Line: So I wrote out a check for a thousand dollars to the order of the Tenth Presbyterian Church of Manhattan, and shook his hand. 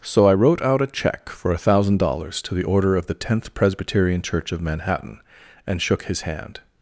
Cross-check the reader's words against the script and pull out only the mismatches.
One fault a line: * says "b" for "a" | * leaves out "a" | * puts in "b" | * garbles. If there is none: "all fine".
all fine